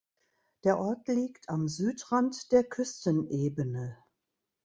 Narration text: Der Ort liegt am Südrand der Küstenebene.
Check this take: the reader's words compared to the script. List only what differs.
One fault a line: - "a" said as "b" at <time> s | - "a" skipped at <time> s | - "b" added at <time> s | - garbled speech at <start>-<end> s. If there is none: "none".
none